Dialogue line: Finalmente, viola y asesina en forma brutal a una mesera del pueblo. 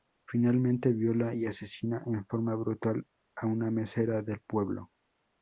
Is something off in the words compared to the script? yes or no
no